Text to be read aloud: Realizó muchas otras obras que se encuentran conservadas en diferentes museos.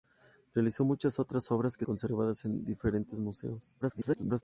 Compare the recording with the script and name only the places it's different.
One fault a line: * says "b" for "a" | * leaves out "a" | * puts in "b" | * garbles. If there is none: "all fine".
* leaves out "se encuentran"
* garbles